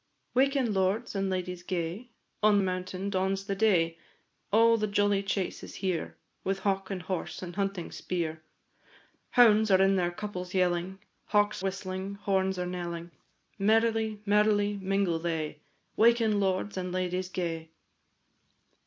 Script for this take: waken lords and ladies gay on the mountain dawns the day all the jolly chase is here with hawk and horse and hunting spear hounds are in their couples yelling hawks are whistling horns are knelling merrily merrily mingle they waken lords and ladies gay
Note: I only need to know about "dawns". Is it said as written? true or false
true